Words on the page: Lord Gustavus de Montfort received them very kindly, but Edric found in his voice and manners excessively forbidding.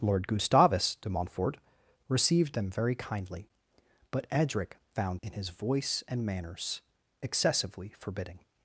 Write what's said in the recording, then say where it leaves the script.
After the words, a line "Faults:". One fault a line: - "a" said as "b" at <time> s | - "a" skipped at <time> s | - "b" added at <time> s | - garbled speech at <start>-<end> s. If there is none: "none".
Lord Gustavus de Montfort received them very kindly, but Edric found in his voice and manners excessively forbidding.
Faults:
none